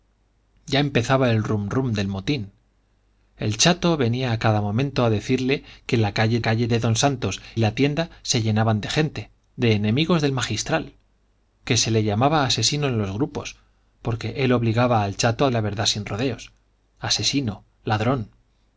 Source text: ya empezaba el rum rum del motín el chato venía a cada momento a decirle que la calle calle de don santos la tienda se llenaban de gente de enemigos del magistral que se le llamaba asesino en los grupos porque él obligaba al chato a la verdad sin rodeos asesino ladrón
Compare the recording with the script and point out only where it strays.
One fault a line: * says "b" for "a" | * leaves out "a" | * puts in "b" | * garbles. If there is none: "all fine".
all fine